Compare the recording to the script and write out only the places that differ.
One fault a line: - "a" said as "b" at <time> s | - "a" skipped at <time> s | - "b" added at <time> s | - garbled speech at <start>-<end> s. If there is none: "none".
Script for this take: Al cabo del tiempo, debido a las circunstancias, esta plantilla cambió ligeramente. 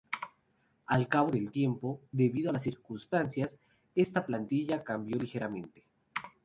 none